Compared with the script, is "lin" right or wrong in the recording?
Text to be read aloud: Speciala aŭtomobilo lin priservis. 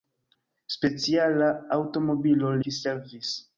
wrong